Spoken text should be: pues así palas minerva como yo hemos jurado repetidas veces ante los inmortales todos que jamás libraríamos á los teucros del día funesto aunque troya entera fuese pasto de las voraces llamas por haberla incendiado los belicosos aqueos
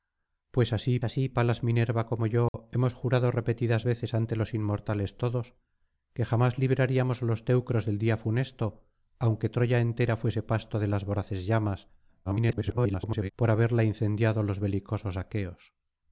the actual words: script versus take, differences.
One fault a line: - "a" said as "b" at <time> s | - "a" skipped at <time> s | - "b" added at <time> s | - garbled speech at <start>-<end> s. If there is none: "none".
- "así" added at 1.0 s
- garbled speech at 12.2-13.3 s